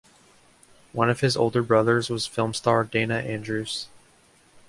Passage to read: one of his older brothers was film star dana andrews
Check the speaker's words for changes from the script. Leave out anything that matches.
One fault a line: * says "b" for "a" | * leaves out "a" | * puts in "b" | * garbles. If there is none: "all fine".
all fine